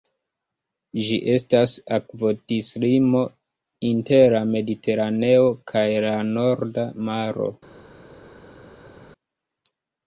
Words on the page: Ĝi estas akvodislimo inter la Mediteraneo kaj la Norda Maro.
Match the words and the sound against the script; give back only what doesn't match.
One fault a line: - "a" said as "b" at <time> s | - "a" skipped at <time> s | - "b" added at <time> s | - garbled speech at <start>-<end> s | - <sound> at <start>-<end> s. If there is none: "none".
none